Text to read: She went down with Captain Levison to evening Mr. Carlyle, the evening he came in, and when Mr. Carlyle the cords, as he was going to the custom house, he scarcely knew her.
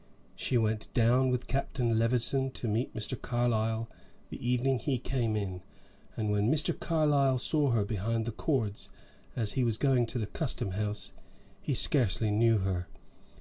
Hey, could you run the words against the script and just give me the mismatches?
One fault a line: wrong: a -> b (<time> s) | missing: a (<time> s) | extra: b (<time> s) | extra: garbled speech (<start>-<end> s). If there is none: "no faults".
wrong: evening -> meet (2.7 s)
extra: saw her behind (7.4 s)